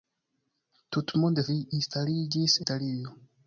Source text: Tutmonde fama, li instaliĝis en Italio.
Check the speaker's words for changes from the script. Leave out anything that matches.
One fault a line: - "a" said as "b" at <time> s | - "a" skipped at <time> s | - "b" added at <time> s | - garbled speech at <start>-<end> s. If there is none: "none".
- "fama" skipped at 1.4 s
- "en" skipped at 2.6 s